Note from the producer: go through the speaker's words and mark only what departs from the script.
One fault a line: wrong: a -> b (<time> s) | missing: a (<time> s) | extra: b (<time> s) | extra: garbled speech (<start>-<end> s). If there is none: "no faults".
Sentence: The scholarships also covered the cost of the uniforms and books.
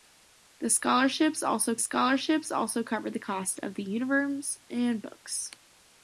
extra: scholarships also (1.8 s)